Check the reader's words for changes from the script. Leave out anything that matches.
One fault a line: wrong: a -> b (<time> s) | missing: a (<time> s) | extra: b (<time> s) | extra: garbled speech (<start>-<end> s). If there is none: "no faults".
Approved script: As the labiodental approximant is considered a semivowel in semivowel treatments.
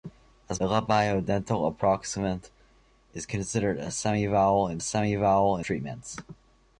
no faults